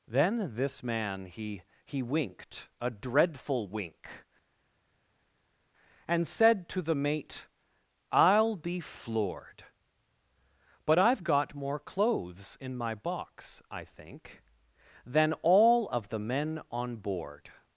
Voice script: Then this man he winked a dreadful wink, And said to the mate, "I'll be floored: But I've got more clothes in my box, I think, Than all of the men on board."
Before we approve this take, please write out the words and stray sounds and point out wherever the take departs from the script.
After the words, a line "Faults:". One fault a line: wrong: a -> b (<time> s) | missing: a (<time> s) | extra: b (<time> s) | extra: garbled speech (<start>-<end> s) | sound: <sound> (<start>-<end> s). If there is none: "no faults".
Then this man he he winked a dreadful wink, And said to the mate, "I'll be floored: But I've got more clothes in my box, I think, Than all of the men on board."
Faults:
extra: he (1.9 s)